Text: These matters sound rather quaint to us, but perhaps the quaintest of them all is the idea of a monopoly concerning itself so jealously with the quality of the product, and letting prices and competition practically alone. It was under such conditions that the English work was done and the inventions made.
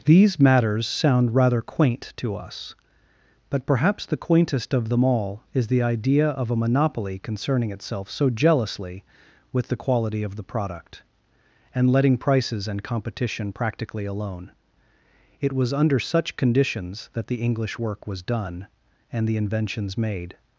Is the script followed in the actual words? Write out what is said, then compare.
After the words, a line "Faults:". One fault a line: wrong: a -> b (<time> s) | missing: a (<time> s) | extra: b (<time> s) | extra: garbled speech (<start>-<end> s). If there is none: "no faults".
These matters sound rather quaint to us, but perhaps the quaintest of them all is the idea of a monopoly concerning itself so jealously with the quality of the product, and letting prices and competition practically alone. It was under such conditions that the English work was done and the inventions made.
Faults:
no faults